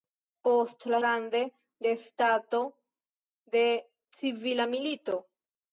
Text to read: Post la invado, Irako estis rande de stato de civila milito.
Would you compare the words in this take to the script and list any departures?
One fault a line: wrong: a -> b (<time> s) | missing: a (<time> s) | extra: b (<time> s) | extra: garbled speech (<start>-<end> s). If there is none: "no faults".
missing: invado Irako estis (1.0 s)